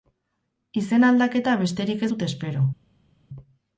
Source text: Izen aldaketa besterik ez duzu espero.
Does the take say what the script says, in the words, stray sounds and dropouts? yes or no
no